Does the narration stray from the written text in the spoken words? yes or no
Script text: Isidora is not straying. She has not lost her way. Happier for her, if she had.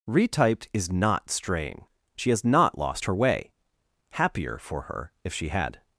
yes